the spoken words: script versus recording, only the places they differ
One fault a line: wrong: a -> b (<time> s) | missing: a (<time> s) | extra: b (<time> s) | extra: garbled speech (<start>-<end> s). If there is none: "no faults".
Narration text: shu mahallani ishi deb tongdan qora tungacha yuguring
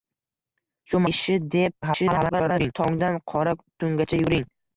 missing: mahallani (1.0 s)
extra: garbled speech (1.8-2.7 s)